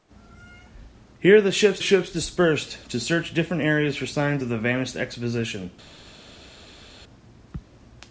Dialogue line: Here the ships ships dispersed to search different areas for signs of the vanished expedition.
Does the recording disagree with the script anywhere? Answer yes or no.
no